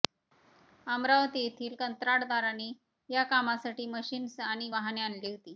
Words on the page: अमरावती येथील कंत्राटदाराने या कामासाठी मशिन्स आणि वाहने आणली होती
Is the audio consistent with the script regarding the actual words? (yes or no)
yes